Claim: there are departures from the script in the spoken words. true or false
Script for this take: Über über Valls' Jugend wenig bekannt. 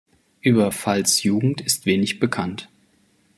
true